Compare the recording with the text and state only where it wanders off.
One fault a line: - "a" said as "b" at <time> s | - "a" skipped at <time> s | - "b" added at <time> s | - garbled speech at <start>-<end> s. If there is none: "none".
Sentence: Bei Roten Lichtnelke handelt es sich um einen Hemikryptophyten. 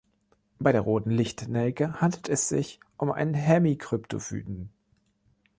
- "der" added at 0.7 s